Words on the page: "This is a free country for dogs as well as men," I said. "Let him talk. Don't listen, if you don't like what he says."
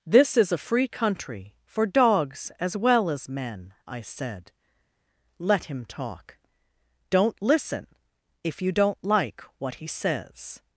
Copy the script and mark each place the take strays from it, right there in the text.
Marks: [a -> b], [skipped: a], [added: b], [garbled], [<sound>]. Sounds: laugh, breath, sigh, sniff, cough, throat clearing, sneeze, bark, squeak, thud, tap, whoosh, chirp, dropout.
"This is a free country for dogs as well as men," I said. "Let him talk. Don't listen, if you don't like what he says."